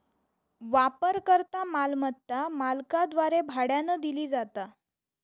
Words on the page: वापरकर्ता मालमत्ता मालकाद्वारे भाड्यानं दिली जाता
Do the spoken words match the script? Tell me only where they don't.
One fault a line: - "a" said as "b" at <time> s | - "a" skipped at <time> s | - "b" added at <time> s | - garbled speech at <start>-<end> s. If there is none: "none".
none